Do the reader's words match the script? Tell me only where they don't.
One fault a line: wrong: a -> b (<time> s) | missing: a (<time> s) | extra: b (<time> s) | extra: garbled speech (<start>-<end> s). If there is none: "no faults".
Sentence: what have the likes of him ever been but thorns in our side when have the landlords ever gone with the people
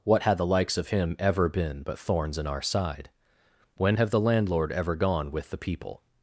wrong: have -> had (0.2 s)
wrong: landlords -> landlord (4.2 s)